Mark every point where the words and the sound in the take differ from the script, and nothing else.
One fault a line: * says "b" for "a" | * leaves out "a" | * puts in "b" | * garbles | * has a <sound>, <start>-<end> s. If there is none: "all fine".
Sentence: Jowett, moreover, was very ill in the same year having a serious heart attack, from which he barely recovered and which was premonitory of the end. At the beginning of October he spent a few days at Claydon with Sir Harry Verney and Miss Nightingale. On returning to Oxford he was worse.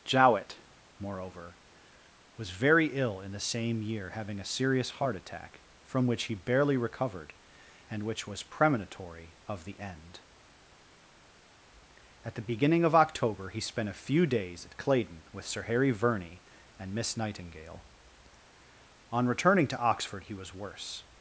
all fine